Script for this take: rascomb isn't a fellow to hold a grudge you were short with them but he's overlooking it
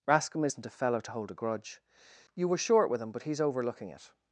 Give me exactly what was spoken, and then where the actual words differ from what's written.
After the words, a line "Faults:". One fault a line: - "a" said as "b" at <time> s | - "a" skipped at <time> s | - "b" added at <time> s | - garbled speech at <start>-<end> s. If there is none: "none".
rascomb isn't a fellow to hold a grudge you were short with him but he's overlooking it
Faults:
- "them" said as "him" at 3.0 s